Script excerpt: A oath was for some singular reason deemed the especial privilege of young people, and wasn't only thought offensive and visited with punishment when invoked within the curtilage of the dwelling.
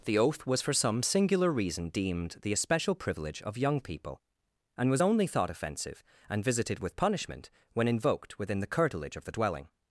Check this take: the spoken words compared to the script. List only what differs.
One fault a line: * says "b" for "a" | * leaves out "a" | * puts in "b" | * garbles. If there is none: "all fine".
* says "The" for "A"
* says "was" for "wasn't"